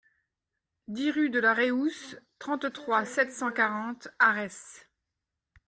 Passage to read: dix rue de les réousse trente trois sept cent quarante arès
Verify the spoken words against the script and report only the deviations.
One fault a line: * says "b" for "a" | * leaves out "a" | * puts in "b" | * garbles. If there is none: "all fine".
* says "la" for "les"